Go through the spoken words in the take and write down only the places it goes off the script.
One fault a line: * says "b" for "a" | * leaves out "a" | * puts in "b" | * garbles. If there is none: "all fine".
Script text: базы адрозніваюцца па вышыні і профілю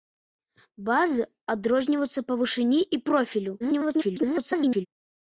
* garbles